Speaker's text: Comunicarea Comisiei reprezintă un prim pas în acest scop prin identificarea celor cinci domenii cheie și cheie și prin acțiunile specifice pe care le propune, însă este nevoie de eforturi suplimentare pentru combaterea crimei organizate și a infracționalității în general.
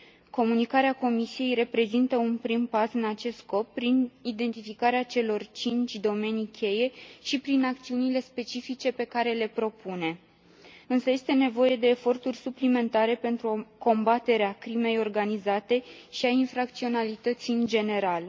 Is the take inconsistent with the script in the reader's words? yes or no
yes